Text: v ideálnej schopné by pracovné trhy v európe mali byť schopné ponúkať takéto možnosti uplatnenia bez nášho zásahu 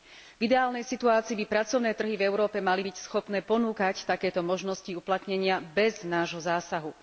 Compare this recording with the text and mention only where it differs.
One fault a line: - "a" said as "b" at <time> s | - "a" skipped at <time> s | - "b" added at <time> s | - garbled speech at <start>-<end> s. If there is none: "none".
- "schopné" said as "situácii" at 0.8 s